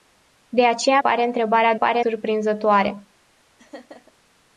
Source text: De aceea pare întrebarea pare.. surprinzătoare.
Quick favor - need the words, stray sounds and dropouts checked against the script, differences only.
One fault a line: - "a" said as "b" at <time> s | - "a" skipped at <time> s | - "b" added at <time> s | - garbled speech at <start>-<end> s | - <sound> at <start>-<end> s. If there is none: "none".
- laugh at 3.6-4.1 s